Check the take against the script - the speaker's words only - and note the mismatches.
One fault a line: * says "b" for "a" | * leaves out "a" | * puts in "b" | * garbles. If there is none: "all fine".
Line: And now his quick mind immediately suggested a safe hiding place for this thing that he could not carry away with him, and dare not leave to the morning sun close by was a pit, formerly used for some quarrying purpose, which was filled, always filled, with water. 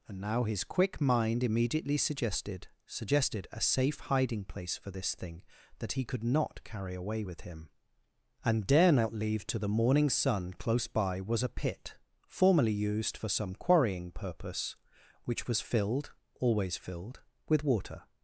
* puts in "suggested"